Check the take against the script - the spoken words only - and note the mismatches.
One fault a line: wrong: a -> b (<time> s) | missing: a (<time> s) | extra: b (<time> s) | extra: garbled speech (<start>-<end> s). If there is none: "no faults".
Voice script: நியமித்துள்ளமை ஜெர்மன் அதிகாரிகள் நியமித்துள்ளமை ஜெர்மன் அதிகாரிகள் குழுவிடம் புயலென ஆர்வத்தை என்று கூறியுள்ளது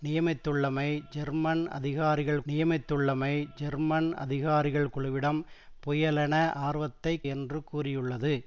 no faults